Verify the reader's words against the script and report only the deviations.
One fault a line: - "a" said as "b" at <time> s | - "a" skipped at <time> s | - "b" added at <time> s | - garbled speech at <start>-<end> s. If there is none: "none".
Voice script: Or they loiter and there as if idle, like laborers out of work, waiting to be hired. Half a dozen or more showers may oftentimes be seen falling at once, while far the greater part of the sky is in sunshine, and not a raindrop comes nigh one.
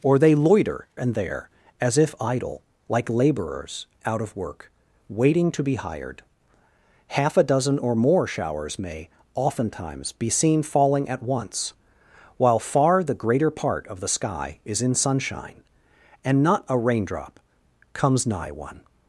none